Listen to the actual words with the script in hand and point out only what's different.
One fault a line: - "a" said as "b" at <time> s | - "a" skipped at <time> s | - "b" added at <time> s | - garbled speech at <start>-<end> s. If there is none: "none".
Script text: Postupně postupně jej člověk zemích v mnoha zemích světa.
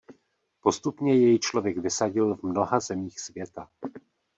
- "postupně" skipped at 1.1 s
- "zemích" said as "vysadil" at 1.8 s